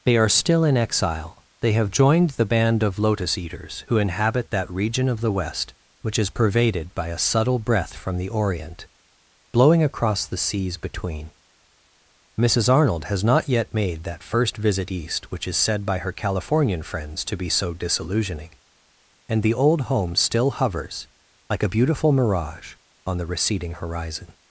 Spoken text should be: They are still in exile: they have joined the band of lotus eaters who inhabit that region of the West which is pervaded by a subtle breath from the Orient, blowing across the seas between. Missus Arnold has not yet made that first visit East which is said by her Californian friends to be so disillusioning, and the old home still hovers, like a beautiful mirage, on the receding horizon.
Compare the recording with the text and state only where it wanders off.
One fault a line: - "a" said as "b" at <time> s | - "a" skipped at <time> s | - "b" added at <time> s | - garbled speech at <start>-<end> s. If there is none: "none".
none